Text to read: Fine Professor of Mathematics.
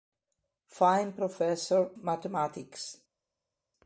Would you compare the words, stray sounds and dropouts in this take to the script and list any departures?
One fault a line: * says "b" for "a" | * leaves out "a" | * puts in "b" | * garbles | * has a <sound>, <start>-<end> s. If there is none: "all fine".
* leaves out "of"